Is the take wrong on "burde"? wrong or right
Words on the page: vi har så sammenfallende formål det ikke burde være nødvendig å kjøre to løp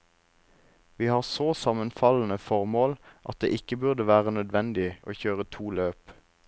right